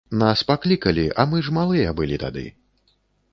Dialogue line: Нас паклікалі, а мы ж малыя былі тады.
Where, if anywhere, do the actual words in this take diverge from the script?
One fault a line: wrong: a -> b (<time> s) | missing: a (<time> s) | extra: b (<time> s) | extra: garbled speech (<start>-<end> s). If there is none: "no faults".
no faults